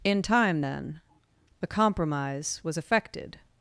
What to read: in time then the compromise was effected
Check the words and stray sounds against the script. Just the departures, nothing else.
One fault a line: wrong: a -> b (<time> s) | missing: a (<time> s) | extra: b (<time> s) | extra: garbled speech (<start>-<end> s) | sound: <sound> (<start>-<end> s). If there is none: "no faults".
no faults